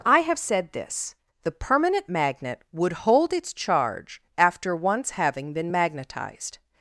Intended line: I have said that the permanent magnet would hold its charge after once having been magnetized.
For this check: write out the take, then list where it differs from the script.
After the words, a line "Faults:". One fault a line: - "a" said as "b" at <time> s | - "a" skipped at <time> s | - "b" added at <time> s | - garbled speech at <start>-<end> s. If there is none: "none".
I have said this the permanent magnet would hold its charge after once having been magnetized.
Faults:
- "that" said as "this" at 0.7 s